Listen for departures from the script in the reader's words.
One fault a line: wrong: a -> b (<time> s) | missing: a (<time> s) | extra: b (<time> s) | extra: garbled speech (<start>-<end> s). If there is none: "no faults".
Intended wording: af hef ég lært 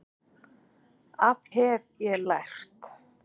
no faults